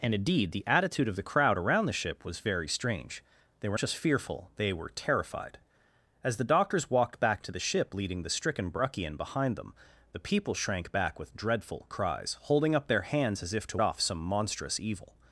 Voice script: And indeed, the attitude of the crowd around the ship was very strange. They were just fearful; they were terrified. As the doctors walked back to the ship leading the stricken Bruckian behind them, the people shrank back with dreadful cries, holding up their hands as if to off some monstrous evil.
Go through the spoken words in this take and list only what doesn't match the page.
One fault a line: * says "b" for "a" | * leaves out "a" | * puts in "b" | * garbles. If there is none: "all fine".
all fine